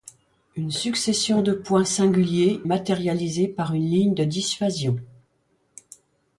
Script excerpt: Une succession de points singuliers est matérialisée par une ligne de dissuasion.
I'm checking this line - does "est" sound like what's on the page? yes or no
no